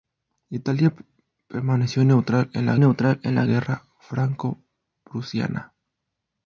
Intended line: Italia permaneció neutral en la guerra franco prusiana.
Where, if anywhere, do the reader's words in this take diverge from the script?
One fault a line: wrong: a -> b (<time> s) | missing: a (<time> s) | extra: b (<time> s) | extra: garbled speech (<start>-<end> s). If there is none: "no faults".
extra: neutral en la (2.8 s)